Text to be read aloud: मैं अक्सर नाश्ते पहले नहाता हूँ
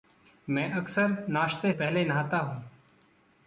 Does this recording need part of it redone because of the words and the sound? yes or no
no